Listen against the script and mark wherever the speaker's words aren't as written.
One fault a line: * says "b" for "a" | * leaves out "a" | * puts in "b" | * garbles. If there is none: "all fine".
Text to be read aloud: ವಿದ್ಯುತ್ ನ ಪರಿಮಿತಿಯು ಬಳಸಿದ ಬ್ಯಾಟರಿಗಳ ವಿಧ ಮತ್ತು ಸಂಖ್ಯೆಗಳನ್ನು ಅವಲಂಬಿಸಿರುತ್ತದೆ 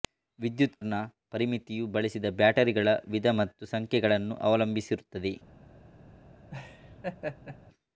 all fine